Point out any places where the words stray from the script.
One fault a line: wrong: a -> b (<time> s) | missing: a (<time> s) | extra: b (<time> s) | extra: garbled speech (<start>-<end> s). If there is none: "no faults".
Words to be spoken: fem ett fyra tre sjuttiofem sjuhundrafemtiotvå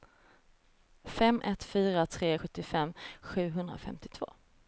no faults